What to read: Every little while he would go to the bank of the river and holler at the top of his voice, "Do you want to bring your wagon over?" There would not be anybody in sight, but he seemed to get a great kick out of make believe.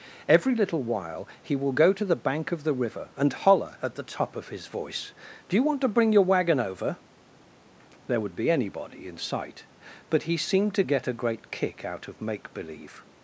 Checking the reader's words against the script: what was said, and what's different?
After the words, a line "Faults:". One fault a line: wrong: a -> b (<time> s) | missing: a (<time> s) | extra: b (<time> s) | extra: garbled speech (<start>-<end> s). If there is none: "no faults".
Every little while he will go to the bank of the river and holler at the top of his voice, "Do you want to bring your wagon over?" There would be anybody in sight, but he seemed to get a great kick out of make believe.
Faults:
wrong: would -> will (1.6 s)
missing: not (8.3 s)